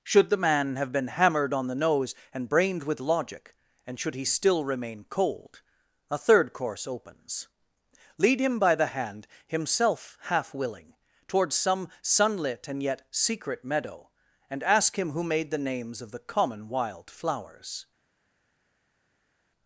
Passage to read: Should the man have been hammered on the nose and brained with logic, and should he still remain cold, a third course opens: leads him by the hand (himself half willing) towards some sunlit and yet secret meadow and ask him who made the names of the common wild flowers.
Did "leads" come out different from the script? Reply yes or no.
yes